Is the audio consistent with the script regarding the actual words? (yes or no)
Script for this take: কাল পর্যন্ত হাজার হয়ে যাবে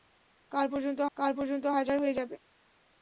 no